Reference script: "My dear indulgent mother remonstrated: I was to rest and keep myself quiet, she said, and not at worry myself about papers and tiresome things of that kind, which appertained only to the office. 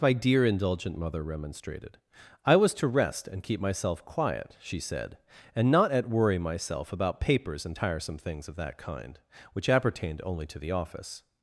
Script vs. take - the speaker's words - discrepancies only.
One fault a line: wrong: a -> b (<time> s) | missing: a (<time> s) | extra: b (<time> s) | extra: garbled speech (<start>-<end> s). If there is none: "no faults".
no faults